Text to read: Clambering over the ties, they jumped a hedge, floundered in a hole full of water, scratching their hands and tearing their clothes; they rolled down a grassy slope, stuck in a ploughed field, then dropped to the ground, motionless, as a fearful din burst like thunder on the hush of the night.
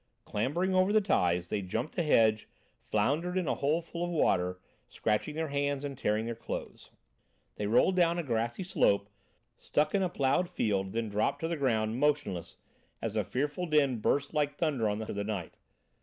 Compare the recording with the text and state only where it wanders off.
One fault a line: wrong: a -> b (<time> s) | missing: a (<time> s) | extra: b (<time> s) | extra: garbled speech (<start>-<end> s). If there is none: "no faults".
missing: hush (15.1 s)